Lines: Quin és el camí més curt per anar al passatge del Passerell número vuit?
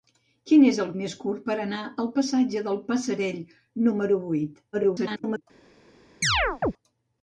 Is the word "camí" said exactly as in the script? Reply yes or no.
no